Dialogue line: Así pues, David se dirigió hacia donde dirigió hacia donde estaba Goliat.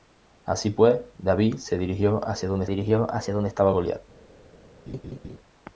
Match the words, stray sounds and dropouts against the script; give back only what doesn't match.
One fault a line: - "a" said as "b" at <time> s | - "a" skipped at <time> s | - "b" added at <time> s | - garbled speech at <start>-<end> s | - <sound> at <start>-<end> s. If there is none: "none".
- laugh at 4.9-5.4 s